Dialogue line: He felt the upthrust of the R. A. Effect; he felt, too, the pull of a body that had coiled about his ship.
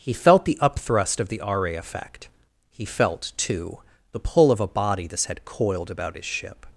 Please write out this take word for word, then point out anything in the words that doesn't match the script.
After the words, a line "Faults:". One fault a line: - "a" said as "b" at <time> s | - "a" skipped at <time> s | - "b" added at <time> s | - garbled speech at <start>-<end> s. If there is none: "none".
He felt the upthrust of the R. A. Effect; he felt, too, the pull of a body this had coiled about his ship.
Faults:
- "that" said as "this" at 5.1 s